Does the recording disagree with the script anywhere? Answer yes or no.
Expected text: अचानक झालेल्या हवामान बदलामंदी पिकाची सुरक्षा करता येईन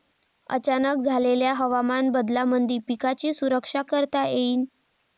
no